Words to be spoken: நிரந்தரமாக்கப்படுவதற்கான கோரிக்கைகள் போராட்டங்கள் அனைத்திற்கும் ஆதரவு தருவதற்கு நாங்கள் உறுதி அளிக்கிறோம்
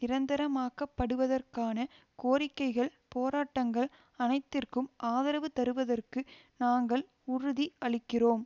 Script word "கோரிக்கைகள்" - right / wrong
right